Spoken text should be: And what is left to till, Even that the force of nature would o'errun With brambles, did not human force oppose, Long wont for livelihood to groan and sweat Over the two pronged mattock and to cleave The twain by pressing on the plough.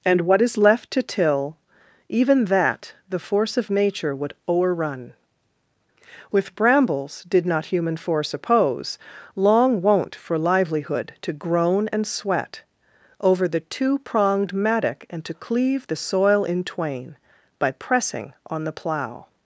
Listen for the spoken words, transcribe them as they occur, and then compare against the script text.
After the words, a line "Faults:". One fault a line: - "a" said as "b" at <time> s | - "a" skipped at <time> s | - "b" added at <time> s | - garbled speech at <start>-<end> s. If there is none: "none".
And what is left to till, Even that the force of nature would o'errun With brambles, did not human force oppose, Long wont for livelihood to groan and sweat Over the two pronged mattock and to cleave The soil in twain by pressing on the plough.
Faults:
- "soil in" added at 15.9 s